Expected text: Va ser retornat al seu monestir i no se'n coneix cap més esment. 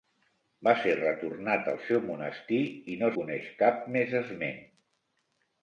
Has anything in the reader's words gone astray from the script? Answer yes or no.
yes